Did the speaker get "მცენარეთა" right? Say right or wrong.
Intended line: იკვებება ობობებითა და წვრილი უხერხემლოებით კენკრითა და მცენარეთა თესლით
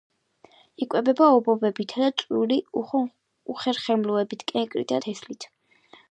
wrong